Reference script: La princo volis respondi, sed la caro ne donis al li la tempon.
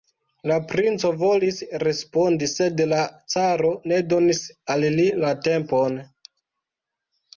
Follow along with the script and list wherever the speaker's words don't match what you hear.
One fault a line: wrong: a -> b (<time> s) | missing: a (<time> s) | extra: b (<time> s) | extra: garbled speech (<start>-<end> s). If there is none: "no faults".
no faults